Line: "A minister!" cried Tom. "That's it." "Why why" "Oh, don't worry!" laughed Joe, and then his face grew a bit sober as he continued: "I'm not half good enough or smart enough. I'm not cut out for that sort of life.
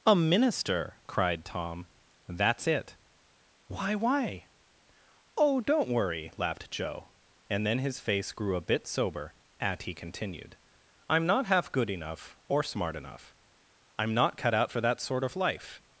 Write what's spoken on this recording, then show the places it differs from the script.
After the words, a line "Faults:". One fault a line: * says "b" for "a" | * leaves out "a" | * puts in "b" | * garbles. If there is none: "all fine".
"A minister!" cried Tom. "That's it." "Why why" "Oh, don't worry!" laughed Joe, and then his face grew a bit sober at he continued: "I'm not half good enough or smart enough. I'm not cut out for that sort of life.
Faults:
* says "at" for "as"